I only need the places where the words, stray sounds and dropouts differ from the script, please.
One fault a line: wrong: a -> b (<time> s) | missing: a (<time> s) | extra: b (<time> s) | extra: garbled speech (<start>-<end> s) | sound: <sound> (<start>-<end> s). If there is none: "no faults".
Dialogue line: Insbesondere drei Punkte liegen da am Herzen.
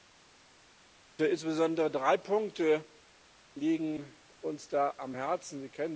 extra: uns (4.4 s)